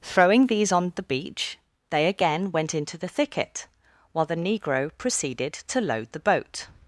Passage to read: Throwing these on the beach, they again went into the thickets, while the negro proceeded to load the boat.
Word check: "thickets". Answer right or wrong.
wrong